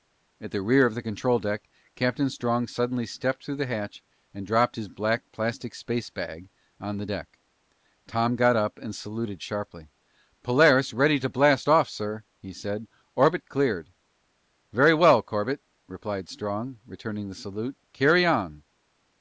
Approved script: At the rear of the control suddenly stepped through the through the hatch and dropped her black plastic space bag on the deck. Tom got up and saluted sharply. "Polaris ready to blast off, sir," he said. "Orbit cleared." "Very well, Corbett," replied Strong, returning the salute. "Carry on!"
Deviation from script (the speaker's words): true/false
true